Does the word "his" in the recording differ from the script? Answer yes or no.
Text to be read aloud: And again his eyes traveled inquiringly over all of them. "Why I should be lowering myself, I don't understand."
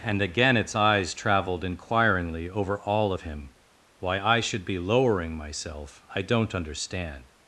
yes